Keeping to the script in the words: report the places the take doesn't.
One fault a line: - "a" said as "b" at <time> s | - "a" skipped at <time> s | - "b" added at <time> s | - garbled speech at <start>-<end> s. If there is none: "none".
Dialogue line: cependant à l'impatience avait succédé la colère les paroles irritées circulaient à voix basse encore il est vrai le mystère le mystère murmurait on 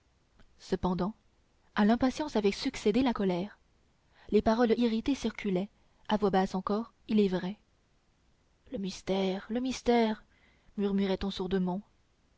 none